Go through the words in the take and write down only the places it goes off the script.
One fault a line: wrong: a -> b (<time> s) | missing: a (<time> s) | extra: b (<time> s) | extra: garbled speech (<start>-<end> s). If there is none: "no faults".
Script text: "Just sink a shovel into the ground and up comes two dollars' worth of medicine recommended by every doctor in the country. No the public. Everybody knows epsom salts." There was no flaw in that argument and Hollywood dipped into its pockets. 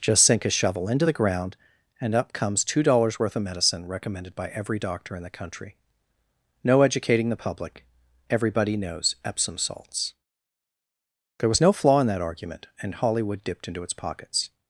extra: educating (6.8 s)